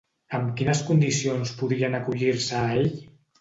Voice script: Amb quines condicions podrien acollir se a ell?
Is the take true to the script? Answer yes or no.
yes